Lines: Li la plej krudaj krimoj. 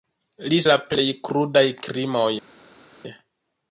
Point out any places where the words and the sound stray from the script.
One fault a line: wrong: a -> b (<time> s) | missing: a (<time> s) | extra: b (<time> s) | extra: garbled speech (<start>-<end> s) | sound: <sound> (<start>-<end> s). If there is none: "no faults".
no faults